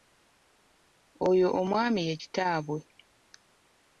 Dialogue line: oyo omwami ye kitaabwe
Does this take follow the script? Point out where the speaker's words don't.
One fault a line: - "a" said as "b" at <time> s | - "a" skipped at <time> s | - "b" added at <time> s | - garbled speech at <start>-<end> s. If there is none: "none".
none